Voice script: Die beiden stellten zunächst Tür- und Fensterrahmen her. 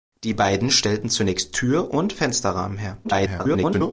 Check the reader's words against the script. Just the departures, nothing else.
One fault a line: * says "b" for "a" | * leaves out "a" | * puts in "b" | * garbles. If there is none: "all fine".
* garbles